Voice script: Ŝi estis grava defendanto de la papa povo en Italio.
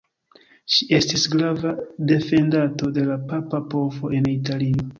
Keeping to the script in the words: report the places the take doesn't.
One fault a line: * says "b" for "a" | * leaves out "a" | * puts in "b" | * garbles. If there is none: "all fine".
all fine